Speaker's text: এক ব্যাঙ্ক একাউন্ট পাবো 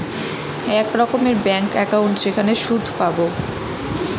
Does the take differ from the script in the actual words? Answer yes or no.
yes